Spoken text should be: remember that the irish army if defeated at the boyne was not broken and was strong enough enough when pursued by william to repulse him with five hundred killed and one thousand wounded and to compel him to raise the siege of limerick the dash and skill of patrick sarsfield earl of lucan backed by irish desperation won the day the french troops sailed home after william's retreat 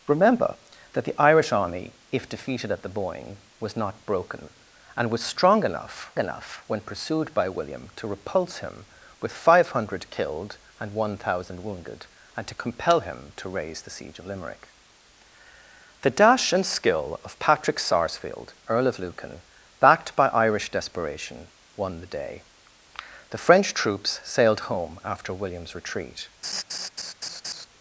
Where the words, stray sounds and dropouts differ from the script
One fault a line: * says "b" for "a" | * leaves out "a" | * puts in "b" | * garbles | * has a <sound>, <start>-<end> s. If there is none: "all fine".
* has a laugh, 26.4-27.7 s